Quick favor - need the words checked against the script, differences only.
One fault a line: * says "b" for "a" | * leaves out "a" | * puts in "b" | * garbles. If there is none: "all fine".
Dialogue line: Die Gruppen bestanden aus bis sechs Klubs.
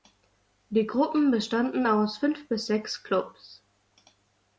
* puts in "fünf"